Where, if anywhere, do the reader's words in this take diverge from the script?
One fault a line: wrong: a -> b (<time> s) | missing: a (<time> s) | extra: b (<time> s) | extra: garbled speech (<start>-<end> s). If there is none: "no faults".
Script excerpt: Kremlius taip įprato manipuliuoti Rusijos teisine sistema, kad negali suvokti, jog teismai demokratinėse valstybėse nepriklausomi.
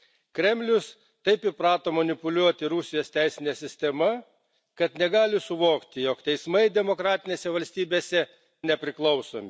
no faults